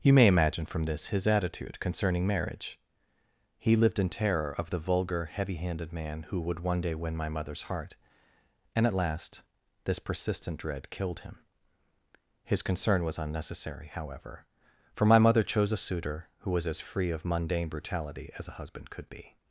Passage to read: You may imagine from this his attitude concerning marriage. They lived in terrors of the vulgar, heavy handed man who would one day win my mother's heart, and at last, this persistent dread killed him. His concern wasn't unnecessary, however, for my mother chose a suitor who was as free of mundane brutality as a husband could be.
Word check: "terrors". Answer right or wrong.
wrong